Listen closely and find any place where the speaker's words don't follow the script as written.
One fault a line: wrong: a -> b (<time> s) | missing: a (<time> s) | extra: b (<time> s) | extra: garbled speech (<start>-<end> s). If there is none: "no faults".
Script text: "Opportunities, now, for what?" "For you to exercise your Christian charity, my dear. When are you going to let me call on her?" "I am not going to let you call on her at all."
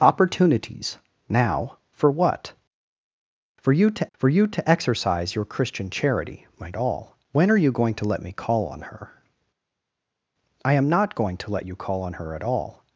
extra: for you to (4.1 s)
wrong: dear -> all (6.7 s)